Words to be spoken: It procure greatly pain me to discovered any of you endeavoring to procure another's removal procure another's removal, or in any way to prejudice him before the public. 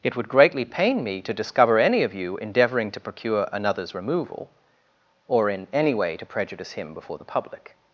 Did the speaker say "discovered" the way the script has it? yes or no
no